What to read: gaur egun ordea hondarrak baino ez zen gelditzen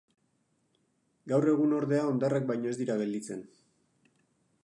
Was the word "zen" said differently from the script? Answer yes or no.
yes